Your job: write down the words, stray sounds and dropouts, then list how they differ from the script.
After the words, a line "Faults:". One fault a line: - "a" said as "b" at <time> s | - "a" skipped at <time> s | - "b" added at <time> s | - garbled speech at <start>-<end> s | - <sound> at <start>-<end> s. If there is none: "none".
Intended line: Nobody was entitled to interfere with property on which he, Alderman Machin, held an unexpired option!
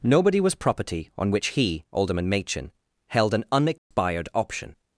Nobody was property on which he, Alderman Machin, held an unexpired option!
Faults:
- "entitled to interfere with" skipped at 0.6 s
- dropout at 3.8-3.9 s